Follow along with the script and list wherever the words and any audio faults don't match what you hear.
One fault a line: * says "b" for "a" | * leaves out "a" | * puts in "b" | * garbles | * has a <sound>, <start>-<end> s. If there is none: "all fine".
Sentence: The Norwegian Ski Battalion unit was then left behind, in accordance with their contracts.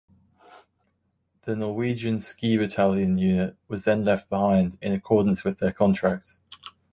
all fine